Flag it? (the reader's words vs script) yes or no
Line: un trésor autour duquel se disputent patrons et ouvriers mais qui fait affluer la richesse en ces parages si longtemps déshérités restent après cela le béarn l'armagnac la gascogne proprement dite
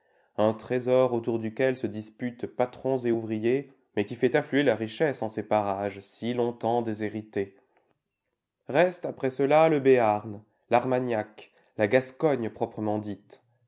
no